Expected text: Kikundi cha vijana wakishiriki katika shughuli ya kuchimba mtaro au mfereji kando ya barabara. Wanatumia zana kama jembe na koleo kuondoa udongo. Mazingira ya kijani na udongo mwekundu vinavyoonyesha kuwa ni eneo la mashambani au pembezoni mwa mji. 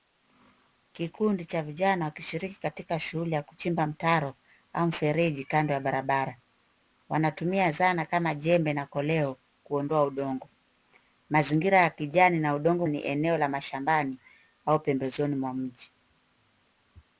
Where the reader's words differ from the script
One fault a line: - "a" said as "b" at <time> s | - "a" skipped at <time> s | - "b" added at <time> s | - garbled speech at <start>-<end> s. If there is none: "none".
- "mwekundu vinavyoonyesha kuwa" skipped at 12.9 s